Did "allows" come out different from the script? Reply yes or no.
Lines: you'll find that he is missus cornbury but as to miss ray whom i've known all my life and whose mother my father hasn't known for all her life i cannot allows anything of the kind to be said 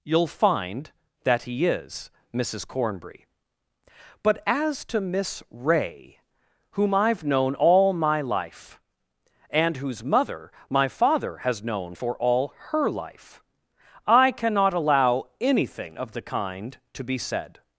yes